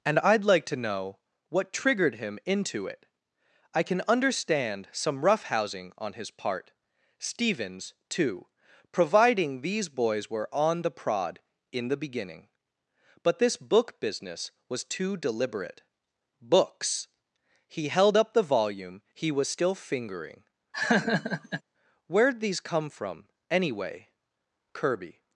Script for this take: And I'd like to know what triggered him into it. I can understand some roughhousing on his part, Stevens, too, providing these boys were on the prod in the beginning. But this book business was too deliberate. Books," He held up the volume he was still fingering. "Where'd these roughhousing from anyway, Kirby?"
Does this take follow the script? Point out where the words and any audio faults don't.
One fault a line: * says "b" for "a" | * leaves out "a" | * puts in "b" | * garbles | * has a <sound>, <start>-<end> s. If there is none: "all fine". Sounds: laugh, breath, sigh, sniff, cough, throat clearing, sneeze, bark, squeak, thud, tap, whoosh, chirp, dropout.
* has a laugh, 20.7-21.6 s
* says "come" for "roughhousing"